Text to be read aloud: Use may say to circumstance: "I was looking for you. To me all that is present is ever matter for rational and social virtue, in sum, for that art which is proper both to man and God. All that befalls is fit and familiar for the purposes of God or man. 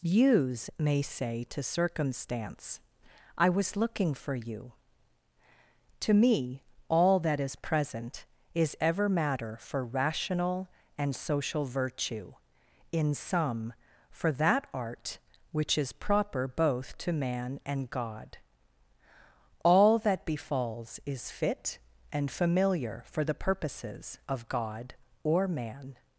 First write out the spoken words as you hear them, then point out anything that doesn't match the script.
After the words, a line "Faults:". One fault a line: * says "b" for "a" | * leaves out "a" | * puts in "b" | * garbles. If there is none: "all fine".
Use may say to circumstance: "I was looking for you. To me all that is present is ever matter for rational and social virtue, in sum, for that art which is proper both to man and God. All that befalls is fit and familiar for the purposes of God or man.
Faults:
all fine